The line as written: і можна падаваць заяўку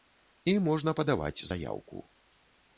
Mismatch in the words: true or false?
false